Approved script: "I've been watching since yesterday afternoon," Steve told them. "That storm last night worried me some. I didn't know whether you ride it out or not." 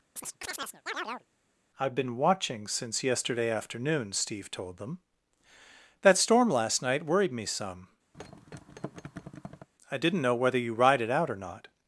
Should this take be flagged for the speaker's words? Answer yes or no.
no